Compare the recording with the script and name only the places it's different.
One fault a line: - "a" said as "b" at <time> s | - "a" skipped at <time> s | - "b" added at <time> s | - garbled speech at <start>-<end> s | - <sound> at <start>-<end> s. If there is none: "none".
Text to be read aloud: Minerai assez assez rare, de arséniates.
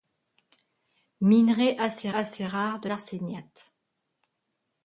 none